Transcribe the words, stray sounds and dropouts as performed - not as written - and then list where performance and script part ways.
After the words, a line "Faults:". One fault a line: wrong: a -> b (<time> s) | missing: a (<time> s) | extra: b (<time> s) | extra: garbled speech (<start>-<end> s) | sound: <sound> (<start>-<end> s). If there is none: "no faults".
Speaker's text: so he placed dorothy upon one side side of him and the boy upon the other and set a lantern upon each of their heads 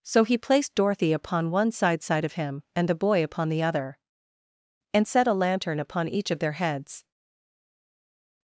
so he placed dorothy upon one side side of him and the boy upon the other and set a lantern upon each of their heads
Faults:
no faults